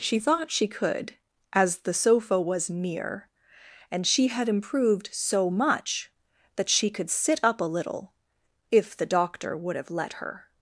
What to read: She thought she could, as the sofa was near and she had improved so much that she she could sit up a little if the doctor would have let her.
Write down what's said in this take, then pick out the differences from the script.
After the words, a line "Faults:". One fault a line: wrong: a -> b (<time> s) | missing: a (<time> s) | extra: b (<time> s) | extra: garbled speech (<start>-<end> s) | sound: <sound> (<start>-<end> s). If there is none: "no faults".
She thought she could, as the sofa was near and she had improved so much that she could sit up a little if the doctor would have let her.
Faults:
missing: she (6.9 s)